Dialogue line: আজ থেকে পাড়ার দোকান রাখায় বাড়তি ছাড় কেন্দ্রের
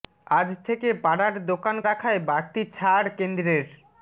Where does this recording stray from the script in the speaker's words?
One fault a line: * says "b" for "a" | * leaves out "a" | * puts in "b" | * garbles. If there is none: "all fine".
all fine